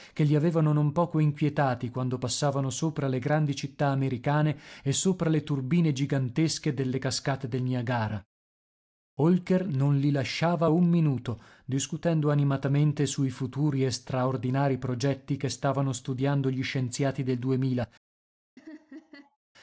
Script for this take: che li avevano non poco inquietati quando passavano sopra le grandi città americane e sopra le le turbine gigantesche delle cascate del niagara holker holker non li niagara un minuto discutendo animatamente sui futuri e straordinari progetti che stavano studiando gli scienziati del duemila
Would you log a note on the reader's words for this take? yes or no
yes